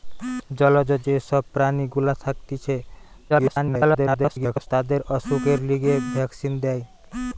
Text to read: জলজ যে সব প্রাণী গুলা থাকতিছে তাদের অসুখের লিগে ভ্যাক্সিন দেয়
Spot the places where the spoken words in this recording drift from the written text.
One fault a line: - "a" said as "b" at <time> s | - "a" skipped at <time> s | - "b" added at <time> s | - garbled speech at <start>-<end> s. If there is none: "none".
- garbled speech at 3.3-4.7 s